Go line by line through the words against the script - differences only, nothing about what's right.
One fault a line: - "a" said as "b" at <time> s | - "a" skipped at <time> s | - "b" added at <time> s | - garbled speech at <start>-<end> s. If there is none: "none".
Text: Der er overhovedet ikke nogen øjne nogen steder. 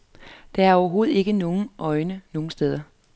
none